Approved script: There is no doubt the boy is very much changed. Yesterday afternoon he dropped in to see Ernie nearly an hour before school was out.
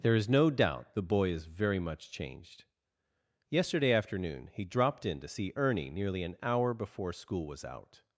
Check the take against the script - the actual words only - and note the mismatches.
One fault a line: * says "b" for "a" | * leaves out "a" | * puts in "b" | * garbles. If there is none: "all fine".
all fine